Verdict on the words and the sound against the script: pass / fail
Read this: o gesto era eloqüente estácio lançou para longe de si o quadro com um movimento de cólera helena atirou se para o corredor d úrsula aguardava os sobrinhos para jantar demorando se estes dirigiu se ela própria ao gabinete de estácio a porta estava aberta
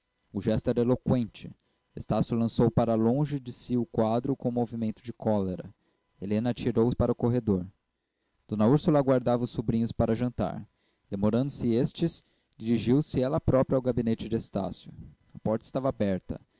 pass